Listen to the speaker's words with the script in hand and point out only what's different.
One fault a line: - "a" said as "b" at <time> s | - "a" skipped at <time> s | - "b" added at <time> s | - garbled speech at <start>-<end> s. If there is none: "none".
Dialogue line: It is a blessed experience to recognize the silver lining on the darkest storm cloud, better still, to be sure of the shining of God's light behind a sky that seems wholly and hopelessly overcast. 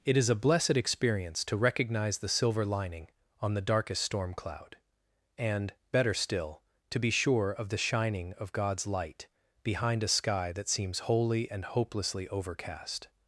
- "and" added at 5.4 s